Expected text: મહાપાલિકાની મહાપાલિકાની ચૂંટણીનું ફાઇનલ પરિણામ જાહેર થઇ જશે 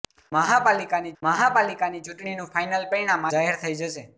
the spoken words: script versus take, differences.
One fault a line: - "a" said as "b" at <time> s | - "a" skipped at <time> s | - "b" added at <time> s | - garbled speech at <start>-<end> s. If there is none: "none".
none